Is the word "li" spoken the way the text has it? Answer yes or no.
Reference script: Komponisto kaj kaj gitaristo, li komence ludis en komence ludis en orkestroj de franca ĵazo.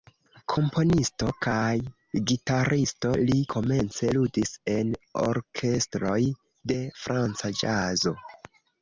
yes